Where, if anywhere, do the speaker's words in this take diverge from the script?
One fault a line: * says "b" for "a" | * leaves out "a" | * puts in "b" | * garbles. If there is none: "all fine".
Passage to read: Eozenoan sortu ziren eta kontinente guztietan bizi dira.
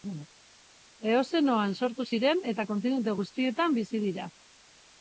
all fine